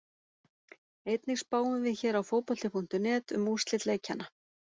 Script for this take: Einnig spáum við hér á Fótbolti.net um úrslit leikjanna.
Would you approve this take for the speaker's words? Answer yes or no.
yes